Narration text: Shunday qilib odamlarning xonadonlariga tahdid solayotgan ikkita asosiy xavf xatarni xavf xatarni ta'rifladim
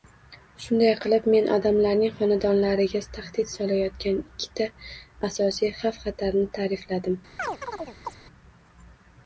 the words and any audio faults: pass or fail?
fail